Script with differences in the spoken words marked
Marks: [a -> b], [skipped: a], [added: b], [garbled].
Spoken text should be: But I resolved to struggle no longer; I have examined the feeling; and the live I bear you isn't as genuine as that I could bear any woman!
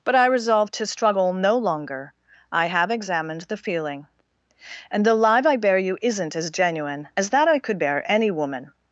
But I resolved to struggle no longer; I have examined the feeling; and the live I bear you isn't as genuine as that I could bear any woman!